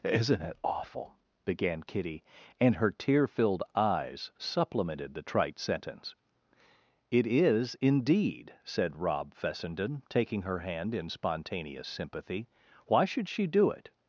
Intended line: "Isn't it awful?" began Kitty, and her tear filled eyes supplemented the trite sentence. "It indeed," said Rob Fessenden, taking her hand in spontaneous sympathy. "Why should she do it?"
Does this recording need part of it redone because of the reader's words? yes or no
yes